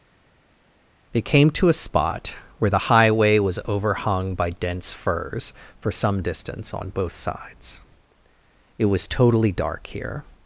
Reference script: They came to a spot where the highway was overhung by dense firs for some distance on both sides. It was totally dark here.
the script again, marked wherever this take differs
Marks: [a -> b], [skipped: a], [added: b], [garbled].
They came to a spot where the highway was overhung by dense firs for some distance on both sides. It was totally dark here.